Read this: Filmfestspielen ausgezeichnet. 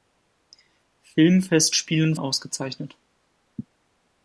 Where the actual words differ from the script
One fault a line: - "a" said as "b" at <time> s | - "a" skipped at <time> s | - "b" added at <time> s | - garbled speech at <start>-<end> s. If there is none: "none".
none